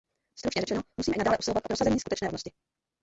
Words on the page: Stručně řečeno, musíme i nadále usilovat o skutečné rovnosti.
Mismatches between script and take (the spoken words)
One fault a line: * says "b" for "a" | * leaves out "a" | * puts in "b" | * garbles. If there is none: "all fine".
* puts in "prosazení"